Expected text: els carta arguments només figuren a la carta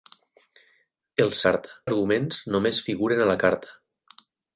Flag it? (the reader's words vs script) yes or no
no